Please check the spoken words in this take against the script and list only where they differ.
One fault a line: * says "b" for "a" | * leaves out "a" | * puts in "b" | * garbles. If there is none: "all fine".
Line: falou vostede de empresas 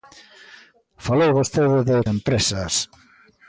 all fine